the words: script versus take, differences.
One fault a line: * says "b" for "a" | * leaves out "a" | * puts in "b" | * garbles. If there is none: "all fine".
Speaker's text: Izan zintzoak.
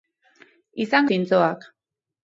all fine